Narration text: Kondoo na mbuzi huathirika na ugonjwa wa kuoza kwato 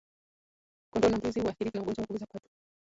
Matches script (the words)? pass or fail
pass